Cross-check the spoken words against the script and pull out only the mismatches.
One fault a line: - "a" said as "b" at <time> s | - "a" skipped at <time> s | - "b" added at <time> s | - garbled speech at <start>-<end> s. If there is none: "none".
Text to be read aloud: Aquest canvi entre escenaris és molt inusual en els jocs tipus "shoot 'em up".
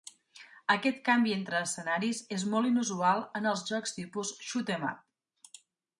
none